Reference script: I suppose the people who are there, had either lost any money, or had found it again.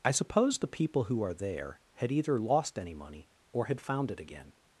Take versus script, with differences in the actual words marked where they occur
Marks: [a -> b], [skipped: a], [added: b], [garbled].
I suppose the people who are there, had either lost any money, or had found it again.